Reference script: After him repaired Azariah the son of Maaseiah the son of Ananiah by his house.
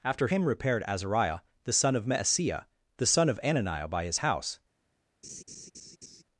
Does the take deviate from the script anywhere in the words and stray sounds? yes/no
yes